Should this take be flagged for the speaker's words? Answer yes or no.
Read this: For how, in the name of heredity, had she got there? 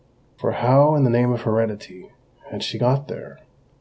no